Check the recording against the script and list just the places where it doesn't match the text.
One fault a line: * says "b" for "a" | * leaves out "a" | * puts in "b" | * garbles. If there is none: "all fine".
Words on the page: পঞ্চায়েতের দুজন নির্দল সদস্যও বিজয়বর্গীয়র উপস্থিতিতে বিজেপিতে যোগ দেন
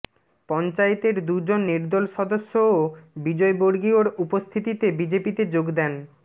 all fine